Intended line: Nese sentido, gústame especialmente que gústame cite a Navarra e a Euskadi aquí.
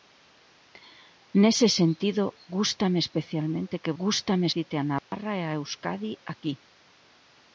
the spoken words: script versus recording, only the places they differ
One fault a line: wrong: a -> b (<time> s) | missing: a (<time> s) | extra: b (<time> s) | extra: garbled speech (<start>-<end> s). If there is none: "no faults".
no faults